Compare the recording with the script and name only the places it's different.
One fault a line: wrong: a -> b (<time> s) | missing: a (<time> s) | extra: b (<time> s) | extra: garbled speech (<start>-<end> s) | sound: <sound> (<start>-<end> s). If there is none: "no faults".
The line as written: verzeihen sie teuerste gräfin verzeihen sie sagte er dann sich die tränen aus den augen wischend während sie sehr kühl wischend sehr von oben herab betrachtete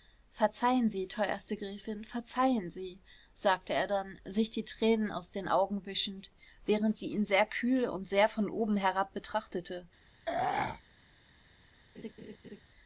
extra: ihn (7.1 s)
wrong: wischend -> und (7.9 s)
sound: throat clearing (10.3-10.8 s)
sound: laugh (12.0-12.6 s)